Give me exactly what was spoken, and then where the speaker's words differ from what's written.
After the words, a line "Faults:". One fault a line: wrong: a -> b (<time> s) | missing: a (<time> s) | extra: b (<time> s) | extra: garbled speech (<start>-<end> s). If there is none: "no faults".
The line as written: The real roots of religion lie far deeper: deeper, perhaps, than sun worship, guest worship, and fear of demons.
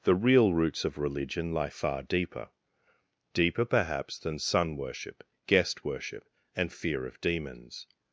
The real roots of religion lie far deeper: deeper, perhaps, than sun worship, guest worship, and fear of demons.
Faults:
no faults